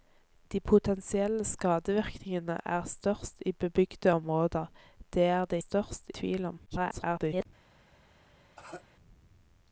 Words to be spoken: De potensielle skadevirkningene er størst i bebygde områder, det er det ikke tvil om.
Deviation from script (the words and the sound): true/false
true